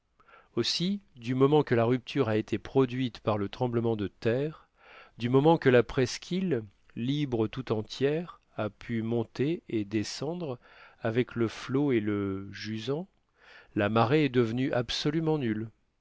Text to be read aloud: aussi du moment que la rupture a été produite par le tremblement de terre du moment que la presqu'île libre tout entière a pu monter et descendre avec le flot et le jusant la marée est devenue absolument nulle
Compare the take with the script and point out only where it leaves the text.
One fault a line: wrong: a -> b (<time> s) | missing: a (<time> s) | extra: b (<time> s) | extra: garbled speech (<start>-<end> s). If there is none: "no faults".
no faults